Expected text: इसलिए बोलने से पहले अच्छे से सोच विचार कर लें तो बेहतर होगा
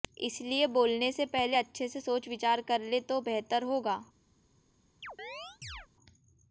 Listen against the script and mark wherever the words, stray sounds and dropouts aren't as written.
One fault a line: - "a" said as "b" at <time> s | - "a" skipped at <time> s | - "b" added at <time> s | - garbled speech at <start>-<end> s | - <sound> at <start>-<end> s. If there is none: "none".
- chirp at 5.0-5.9 s